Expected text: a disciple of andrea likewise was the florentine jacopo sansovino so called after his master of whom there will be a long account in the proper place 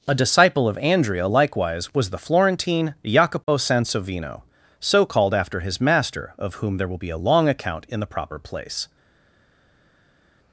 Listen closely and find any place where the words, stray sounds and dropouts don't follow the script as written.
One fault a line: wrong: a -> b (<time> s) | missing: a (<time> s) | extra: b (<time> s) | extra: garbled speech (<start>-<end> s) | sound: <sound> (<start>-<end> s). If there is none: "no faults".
no faults